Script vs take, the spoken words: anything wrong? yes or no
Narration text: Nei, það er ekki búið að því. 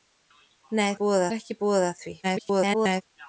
yes